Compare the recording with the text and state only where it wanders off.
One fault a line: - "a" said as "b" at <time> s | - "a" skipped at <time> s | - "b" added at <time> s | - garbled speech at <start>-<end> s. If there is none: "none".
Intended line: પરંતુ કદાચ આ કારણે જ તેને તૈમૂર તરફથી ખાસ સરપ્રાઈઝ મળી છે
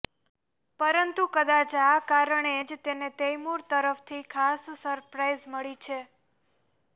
none